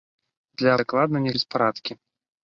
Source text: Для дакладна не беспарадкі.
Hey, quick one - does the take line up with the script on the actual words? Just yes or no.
yes